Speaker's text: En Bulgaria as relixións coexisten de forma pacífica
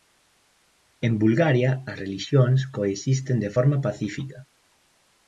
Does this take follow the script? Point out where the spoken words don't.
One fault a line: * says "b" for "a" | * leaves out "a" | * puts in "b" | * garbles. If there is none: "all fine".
all fine